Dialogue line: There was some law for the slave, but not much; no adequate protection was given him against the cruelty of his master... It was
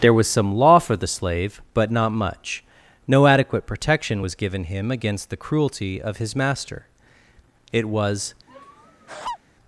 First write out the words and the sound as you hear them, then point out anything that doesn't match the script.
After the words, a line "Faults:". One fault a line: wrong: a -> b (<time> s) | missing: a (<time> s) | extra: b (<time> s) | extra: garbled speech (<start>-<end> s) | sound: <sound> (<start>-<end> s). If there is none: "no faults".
There was some law for the slave, but not much; no adequate protection was given him against the cruelty of his master... It was
Faults:
sound: laugh (8.5-9.4 s)